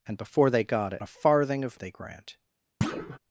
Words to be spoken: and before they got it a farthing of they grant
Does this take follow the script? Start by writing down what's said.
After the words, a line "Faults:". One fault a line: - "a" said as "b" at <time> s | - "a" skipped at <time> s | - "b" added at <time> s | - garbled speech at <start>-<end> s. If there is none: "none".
and before they got it a farthing of they grant
Faults:
none